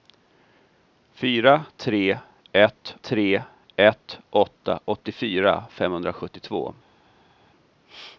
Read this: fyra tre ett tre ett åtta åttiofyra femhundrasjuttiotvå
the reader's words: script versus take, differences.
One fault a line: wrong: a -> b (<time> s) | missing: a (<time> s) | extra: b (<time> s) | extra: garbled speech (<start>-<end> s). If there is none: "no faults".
no faults